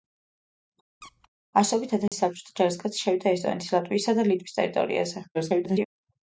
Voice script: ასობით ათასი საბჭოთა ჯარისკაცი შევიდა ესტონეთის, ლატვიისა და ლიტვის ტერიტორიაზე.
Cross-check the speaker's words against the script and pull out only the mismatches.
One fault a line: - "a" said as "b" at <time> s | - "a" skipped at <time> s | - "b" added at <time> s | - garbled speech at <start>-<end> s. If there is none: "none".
- garbled speech at 5.3-5.9 s